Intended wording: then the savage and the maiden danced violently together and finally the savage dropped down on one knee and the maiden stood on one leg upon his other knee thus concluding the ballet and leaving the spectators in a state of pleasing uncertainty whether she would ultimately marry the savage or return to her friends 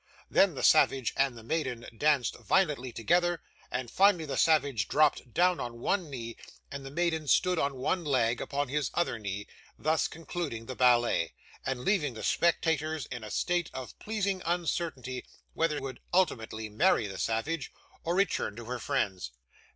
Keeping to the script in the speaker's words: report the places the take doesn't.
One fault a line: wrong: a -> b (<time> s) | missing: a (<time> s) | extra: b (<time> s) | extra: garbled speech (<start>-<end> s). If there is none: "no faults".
missing: she (15.8 s)